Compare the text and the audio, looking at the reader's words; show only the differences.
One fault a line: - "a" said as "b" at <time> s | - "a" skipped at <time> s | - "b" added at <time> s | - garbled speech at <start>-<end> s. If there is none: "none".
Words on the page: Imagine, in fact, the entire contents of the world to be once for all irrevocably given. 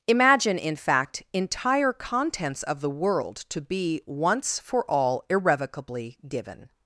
- "the" skipped at 1.2 s